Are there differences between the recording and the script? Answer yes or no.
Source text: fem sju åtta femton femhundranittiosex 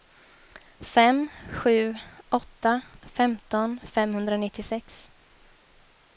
no